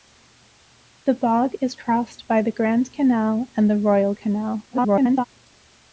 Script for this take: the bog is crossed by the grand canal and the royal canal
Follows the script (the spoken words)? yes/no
no